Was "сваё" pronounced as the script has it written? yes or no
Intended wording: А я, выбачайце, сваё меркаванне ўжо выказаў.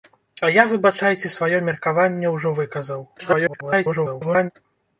yes